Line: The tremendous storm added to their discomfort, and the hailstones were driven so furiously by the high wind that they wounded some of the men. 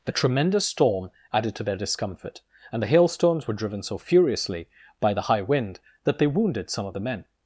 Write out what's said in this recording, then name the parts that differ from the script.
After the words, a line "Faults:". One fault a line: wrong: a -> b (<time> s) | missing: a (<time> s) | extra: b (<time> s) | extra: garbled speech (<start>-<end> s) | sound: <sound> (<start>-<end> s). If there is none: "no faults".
The tremendous storm added to their discomfort, and the hailstones were driven so furiously by the high wind that they wounded some of the men.
Faults:
no faults